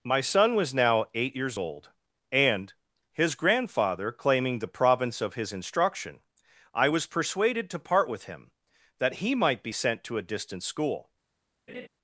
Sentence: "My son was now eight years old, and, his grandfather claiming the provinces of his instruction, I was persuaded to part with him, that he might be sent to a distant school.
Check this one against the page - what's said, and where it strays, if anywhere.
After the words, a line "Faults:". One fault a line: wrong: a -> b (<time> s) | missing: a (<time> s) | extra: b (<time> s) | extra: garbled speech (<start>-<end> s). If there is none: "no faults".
"My son was now eight years old, and, his grandfather claiming the province of his instruction, I was persuaded to part with him, that he might be sent to a distant school.
Faults:
wrong: provinces -> province (4.7 s)